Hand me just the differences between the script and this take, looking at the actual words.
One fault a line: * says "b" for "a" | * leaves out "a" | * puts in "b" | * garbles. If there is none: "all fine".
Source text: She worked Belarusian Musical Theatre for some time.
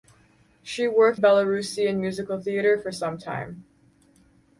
all fine